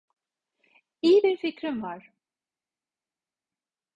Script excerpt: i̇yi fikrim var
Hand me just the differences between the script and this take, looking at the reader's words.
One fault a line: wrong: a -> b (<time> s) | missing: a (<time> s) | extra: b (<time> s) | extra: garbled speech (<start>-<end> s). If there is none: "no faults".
extra: bir (1.2 s)